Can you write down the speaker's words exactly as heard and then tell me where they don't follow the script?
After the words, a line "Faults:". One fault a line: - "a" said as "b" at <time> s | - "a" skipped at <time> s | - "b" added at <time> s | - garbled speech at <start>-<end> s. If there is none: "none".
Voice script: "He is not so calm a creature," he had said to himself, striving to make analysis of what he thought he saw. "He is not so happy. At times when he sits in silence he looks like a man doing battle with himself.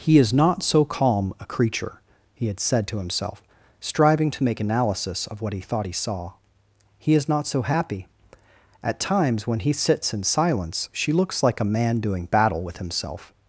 "He is not so calm a creature," he had said to himself, striving to make analysis of what he thought he saw. "He is not so happy. At times when he sits in silence she looks like a man doing battle with himself.
Faults:
- "he" said as "she" at 10.9 s